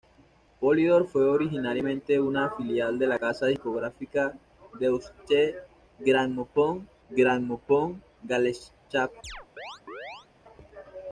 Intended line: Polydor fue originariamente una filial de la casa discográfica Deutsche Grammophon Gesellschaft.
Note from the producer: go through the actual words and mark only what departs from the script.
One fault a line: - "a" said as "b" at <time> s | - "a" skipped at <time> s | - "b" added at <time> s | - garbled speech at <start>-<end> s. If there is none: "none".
- "Grammophon" added at 7.1 s